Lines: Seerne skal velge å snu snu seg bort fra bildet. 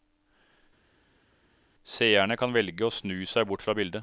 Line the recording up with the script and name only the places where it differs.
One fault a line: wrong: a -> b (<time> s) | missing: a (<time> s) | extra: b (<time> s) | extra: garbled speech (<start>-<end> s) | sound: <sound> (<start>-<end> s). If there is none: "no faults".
wrong: skal -> kan (2.4 s)
missing: snu (3.3 s)